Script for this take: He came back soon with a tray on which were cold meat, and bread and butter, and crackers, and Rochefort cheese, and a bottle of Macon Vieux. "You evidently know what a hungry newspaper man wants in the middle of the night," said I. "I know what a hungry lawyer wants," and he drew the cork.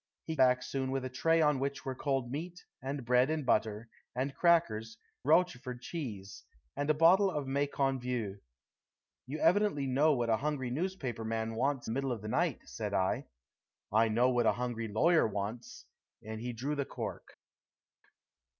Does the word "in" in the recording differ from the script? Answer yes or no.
yes